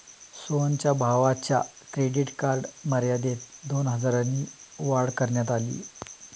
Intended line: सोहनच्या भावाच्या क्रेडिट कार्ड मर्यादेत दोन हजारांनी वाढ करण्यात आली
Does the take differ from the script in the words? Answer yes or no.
no